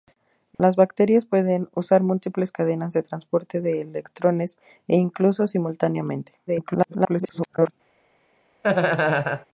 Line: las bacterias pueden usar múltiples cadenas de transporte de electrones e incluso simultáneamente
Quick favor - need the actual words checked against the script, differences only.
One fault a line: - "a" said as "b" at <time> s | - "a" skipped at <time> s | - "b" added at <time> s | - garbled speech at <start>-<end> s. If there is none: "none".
- garbled speech at 6.5-7.7 s